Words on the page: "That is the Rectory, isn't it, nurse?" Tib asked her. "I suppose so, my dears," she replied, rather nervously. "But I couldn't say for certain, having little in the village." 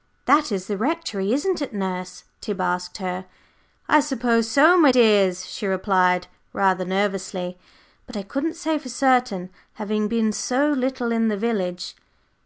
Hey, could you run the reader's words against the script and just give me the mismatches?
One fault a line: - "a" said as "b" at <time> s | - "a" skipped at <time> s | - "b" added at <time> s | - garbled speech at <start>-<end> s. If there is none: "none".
- "been so" added at 10.1 s